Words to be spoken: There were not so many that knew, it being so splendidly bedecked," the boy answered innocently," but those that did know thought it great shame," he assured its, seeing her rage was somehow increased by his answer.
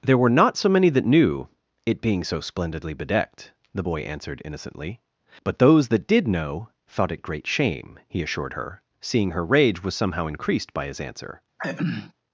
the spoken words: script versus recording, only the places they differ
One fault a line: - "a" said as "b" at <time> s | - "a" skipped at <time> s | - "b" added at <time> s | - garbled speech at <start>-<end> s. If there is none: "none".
- "its" said as "her" at 8.5 s